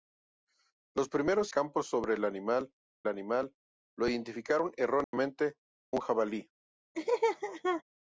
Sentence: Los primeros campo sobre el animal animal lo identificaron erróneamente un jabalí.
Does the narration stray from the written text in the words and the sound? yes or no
yes